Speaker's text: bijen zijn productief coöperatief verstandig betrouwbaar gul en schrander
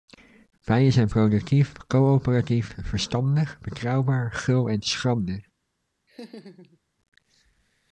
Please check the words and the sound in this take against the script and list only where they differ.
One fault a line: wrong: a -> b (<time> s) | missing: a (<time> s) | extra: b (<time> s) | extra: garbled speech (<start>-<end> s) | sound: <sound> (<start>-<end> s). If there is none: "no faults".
sound: laugh (6.1-6.8 s)